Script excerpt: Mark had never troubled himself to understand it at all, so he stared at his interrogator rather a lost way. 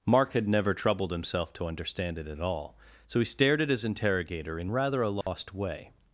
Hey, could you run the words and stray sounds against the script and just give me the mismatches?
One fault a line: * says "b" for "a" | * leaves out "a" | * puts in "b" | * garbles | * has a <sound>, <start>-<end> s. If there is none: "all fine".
* puts in "in"
* has a dropout, 5.2-5.3 s